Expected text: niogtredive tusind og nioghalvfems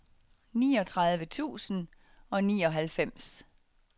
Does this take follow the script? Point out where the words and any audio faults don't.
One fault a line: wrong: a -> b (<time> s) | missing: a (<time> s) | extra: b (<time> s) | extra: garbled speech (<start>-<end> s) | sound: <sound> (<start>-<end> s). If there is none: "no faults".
no faults